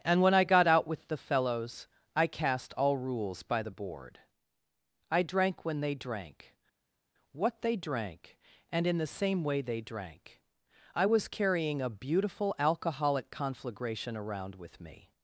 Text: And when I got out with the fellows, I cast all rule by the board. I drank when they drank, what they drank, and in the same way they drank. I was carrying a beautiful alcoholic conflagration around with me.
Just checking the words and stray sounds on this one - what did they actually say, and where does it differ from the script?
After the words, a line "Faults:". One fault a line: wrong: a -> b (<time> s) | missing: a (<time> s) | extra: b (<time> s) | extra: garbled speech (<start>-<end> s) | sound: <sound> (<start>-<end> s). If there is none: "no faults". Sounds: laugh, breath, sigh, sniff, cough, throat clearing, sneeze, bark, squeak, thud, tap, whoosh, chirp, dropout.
And when I got out with the fellows, I cast all rules by the board. I drank when they drank, what they drank, and in the same way they drank. I was carrying a beautiful alcoholic conflagration around with me.
Faults:
wrong: rule -> rules (3.0 s)